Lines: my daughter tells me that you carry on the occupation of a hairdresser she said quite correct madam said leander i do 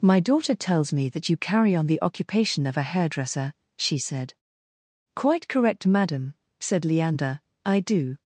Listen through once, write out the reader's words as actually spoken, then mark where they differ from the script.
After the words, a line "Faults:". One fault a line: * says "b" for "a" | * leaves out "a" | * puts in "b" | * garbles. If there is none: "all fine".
my daughter tells me that you carry on the occupation of a hairdresser she said quite correct madam said leander i do
Faults:
all fine